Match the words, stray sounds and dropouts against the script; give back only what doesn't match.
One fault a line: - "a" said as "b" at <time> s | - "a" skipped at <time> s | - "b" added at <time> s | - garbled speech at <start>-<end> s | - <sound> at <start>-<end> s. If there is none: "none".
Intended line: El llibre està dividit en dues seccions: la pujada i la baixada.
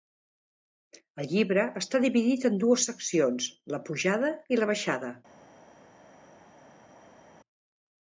none